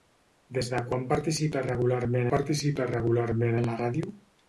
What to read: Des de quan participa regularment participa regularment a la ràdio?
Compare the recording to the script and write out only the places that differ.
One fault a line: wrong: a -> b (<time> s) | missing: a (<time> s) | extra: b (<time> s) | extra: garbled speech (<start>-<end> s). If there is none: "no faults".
no faults